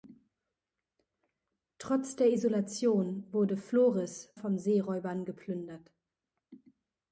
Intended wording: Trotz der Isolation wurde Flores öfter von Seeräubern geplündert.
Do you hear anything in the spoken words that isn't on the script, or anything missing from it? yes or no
yes